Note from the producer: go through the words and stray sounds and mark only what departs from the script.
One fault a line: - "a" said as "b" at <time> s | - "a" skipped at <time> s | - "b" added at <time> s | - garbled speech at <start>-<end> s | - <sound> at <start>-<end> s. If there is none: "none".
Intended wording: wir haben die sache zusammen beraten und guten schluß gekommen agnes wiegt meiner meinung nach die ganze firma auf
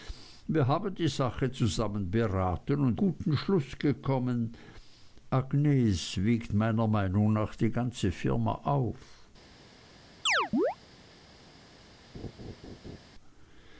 - chirp at 10.3-10.8 s
- laugh at 12.1-13.0 s